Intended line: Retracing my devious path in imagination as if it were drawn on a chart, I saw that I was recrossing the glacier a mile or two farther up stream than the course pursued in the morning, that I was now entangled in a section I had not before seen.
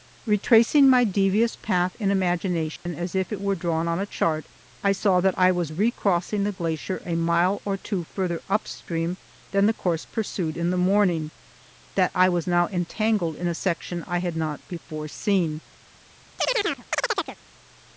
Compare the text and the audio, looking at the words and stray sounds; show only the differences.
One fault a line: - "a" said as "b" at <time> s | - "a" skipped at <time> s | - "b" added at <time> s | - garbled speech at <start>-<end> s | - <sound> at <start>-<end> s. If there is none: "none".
- dropout at 2.8-2.9 s
- chirp at 16.4-17.4 s